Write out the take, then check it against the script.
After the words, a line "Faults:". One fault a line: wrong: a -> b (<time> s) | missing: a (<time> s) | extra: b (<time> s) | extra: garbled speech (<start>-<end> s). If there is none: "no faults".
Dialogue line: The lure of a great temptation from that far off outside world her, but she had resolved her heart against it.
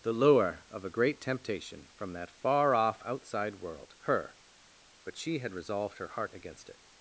The lure of a great temptation from that far off outside world her, but she had resolved her heart against it.
Faults:
no faults